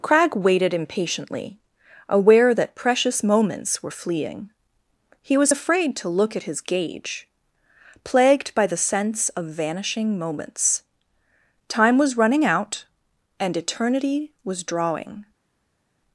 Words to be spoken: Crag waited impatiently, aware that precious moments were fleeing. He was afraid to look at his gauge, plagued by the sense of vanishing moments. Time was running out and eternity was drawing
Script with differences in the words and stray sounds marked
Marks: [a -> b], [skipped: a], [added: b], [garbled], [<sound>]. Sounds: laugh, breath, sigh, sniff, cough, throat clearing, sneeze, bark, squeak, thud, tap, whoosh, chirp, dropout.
Crag waited impatiently, aware that precious moments were fleeing. He was afraid to look at his gauge, plagued by the sense of vanishing moments. Time was running out and eternity was drawing